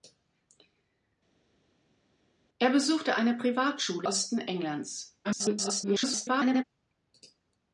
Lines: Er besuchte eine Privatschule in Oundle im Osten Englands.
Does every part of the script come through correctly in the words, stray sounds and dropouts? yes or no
no